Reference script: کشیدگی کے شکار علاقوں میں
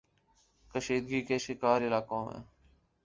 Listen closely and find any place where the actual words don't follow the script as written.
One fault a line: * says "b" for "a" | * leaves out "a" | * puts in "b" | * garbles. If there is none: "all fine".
all fine